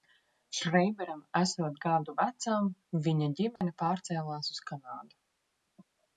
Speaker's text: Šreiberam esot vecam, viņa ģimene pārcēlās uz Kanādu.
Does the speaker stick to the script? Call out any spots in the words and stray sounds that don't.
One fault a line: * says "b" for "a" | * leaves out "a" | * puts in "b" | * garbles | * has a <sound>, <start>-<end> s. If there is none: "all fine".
* puts in "gadu"
* has a dropout, 3.6-3.6 s